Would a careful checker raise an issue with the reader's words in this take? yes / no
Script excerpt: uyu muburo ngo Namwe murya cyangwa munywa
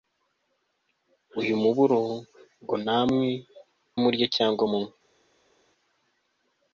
no